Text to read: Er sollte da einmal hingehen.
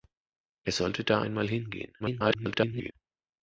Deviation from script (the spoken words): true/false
true